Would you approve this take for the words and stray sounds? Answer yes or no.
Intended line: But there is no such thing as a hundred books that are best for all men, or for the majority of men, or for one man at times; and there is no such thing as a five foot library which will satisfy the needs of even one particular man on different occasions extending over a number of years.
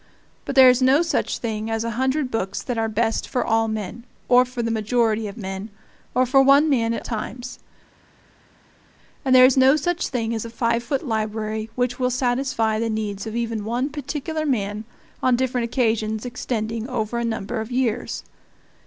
yes